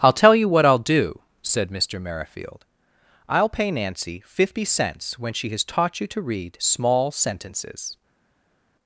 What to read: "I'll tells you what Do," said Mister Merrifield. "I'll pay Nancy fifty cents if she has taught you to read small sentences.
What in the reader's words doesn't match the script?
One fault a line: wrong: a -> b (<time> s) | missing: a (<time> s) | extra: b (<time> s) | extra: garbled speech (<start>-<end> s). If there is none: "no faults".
wrong: tells -> tell (0.1 s)
extra: I'll (0.7 s)
wrong: if -> when (5.2 s)